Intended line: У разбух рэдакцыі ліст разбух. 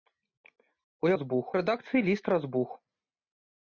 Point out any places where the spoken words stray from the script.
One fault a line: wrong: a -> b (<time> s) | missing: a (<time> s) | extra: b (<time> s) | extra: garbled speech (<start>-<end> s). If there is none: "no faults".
no faults